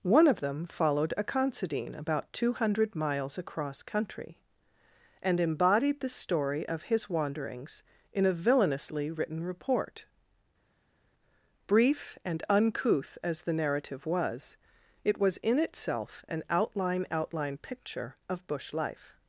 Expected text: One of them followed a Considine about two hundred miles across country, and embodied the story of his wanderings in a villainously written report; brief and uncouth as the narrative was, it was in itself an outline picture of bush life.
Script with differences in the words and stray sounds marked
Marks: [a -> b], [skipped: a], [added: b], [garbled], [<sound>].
One of them followed a Considine about two hundred miles across country, and embodied the story of his wanderings in a villainously written report; brief and uncouth as the narrative was, it was in itself an outline [added: outline] picture of bush life.